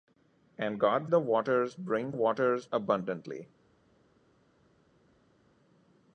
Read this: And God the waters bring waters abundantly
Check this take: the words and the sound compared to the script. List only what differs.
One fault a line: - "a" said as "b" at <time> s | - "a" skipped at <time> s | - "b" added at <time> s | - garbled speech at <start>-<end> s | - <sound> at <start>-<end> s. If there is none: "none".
none